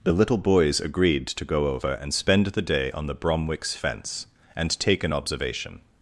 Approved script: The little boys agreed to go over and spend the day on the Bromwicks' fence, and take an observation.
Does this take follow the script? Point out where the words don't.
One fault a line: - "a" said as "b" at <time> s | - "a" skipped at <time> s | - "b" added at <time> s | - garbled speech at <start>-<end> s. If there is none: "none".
none